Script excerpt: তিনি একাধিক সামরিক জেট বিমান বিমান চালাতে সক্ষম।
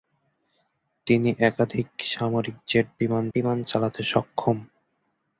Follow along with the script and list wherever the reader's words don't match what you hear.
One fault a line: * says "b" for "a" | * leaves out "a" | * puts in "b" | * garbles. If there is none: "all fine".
all fine